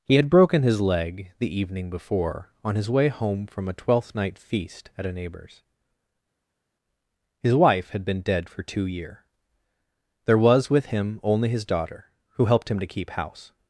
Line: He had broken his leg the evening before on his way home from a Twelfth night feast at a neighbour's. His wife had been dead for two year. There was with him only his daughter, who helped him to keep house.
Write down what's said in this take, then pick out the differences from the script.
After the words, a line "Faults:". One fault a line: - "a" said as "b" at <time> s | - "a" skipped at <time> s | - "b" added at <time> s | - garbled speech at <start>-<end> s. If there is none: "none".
He had broken his leg the evening before on his way home from a Twelfth night feast at a neighbour's. His wife had been dead for two year. There was with him only his daughter, who helped him to keep house.
Faults:
none